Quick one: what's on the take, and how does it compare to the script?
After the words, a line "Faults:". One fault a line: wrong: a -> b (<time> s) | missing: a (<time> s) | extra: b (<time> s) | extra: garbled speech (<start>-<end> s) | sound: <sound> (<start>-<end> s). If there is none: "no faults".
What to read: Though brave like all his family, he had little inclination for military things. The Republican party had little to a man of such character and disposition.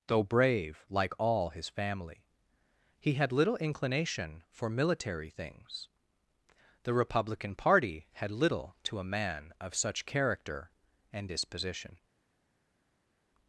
Though brave like all his family, he had little inclination for military things. The Republican party had little to a man of such character and disposition.
Faults:
no faults